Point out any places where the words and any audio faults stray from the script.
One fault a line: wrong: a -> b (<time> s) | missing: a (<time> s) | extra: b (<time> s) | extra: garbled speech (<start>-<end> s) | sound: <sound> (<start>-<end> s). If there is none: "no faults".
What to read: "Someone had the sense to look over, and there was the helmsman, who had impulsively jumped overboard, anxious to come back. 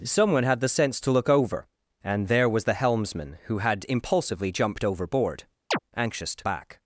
sound: chirp (5.7-5.8 s)
missing: come (6.4 s)